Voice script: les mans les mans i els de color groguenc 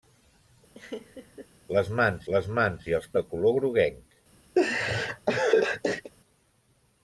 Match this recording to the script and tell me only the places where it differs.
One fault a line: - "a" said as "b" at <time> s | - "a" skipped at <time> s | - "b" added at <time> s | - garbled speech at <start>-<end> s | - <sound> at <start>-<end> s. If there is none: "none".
- laugh at 0.7-1.5 s
- laugh at 4.6-6.1 s